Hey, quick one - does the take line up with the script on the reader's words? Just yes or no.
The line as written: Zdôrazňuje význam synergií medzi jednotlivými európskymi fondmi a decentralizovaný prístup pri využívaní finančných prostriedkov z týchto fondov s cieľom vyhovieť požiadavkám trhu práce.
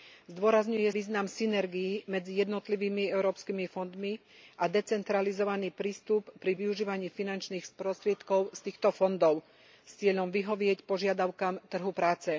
yes